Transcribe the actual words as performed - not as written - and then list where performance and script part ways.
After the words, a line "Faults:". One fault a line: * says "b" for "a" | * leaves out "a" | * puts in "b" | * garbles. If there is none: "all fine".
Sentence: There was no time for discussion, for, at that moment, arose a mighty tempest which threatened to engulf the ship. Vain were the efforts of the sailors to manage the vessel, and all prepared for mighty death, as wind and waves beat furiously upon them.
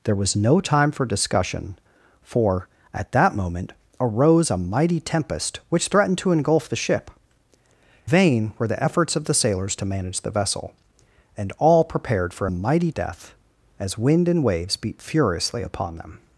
There was no time for discussion, for, at that moment, arose a mighty tempest which threatened to engulf the ship. Vain were the efforts of the sailors to manage the vessel, and all prepared for mighty death, as wind and waves beat furiously upon them.
Faults:
all fine